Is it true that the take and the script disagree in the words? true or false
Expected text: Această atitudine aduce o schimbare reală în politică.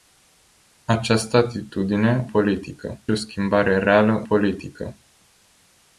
true